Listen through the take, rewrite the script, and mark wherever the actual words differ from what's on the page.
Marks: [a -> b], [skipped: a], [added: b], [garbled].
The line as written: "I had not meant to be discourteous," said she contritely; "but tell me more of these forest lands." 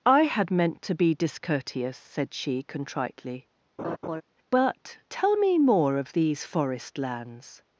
"I had [skipped: not] meant to be discourteous," said she contritely; "but tell me more of these forest lands."